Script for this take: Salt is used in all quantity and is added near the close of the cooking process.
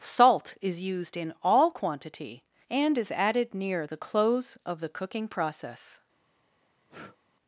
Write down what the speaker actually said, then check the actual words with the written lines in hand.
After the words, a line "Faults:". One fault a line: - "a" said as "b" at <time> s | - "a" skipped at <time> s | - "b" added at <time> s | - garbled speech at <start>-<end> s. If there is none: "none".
Salt is used in all quantity and is added near the close of the cooking process.
Faults:
none